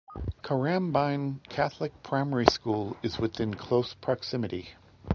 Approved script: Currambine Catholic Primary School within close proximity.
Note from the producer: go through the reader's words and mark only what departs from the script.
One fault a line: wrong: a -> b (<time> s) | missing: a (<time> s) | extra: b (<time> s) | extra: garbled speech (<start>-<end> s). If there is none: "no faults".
extra: is (3.0 s)